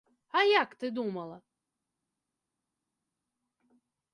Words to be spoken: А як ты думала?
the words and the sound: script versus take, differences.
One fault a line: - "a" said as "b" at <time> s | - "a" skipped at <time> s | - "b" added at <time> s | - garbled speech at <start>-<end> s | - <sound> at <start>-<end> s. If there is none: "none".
none